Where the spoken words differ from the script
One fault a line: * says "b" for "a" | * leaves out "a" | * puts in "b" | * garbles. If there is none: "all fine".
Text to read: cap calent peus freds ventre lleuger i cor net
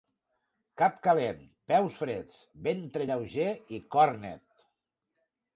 all fine